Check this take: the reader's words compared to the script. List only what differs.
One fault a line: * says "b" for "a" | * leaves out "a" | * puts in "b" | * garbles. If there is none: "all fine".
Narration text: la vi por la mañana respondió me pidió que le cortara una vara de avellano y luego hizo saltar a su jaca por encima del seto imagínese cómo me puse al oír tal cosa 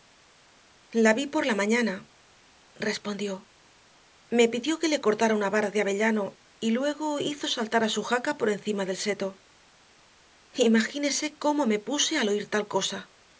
all fine